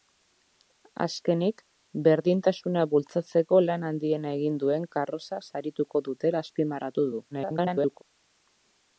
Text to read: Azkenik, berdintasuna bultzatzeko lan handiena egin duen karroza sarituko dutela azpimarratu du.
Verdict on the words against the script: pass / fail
fail